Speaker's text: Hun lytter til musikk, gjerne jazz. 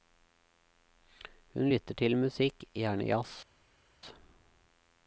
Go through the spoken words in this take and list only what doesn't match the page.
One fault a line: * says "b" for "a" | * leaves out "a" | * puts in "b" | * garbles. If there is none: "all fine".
all fine